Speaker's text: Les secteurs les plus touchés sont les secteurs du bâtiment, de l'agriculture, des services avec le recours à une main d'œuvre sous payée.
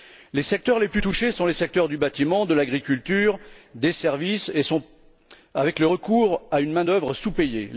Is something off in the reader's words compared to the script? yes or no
no